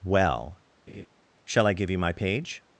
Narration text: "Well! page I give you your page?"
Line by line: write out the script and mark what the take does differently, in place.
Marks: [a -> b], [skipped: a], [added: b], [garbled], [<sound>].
"Well! [laugh] [page -> shall] I give you [your -> my] page?"